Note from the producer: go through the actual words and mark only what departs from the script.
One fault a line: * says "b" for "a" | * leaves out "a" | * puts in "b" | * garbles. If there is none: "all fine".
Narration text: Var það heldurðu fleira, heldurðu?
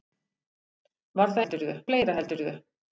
all fine